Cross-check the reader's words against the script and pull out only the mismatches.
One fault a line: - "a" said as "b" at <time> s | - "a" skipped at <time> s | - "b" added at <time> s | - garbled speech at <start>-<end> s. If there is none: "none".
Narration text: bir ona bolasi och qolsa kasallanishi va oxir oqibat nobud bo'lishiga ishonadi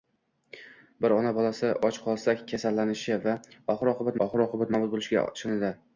- "oxir oqibat" added at 4.3 s